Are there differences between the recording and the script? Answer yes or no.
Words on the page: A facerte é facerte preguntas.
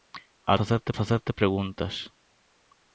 no